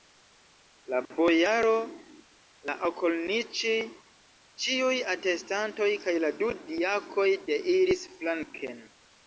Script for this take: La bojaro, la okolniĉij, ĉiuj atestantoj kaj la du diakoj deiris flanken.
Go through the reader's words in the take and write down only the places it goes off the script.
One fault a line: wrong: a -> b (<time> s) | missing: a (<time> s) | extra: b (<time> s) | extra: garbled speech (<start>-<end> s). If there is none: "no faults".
no faults